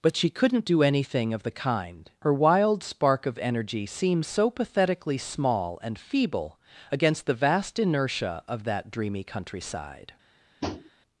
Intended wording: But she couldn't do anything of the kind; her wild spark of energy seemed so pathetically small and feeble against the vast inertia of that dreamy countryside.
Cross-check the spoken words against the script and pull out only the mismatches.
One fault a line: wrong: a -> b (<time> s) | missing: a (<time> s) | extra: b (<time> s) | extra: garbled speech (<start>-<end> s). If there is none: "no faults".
no faults